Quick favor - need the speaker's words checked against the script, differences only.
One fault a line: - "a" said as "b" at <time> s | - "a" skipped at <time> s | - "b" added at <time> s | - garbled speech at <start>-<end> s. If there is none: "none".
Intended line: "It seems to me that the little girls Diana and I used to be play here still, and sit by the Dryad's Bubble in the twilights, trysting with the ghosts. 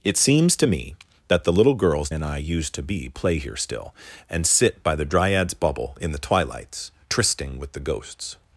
- "Diana" skipped at 2.1 s